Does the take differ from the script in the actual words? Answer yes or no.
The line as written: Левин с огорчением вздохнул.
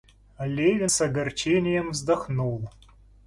no